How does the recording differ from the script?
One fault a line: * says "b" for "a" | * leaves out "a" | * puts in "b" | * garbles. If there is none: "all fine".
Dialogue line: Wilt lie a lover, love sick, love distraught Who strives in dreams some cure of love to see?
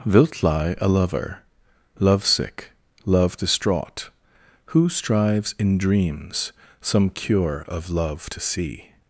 all fine